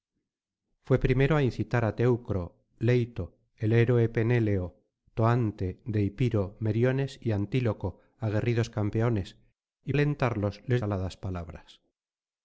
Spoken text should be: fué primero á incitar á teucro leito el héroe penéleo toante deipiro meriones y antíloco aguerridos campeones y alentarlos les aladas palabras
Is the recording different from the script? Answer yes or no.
no